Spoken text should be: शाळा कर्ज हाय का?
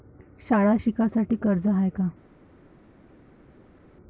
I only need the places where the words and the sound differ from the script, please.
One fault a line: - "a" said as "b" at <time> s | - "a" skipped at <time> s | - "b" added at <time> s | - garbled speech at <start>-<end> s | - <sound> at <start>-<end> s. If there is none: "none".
- "शिकासाठी" added at 0.8 s